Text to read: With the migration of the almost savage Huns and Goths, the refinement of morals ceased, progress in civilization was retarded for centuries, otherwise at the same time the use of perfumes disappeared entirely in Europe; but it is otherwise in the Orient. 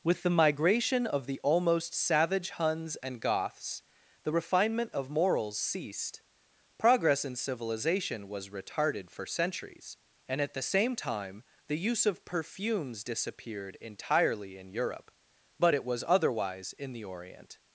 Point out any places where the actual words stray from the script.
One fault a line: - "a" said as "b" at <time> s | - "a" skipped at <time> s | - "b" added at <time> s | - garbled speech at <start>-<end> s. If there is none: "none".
- "otherwise" said as "and" at 10.2 s
- "is" said as "was" at 15.9 s